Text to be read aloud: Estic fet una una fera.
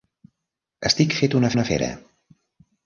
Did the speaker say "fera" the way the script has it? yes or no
yes